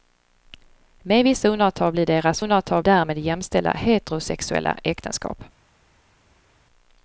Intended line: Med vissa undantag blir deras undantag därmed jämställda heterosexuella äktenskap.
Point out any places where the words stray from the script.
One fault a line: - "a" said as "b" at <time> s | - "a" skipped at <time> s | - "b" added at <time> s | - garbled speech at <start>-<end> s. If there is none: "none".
none